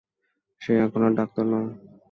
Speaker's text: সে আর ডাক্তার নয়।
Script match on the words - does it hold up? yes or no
no